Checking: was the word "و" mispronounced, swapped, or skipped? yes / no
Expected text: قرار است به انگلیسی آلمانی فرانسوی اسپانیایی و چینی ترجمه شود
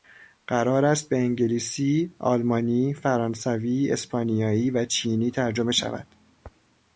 no